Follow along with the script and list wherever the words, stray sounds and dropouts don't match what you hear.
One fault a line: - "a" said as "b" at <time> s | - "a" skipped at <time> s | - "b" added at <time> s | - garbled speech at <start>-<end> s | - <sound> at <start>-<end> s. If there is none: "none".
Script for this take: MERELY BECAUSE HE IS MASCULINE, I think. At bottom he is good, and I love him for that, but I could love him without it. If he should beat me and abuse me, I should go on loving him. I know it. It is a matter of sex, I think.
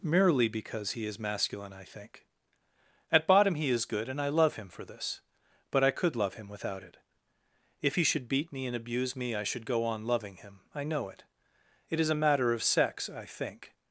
- "that" said as "this" at 4.8 s